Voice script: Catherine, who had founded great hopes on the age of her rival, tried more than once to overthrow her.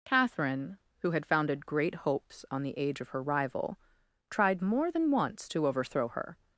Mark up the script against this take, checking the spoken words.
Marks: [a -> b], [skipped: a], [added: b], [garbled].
Catherine, who had founded great hopes on the age of her rival, tried more than once to overthrow her.